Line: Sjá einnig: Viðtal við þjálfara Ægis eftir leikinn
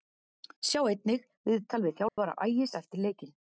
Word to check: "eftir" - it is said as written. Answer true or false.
true